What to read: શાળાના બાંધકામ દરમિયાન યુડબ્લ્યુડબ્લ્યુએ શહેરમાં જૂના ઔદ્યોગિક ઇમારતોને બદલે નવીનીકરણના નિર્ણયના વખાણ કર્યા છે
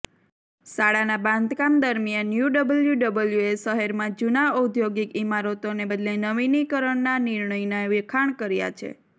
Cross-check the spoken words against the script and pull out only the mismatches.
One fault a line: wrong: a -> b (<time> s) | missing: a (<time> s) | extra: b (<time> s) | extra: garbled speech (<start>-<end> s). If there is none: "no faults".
no faults